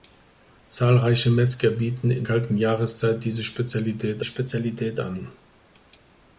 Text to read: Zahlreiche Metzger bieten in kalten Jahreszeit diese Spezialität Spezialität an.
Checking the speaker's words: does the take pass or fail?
pass